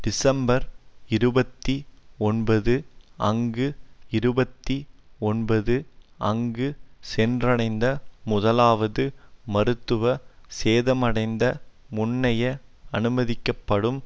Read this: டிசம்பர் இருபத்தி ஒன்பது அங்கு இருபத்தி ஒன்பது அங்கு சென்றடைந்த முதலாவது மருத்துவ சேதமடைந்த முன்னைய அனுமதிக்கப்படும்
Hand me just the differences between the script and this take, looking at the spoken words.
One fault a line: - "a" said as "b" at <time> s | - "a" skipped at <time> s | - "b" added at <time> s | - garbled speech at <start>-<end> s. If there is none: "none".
none